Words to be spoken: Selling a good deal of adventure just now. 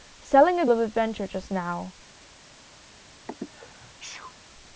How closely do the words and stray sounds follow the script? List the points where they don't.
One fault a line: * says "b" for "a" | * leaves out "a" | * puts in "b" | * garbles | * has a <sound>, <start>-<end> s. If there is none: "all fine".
* leaves out "good deal"
* has a sneeze, 3.3-4.4 s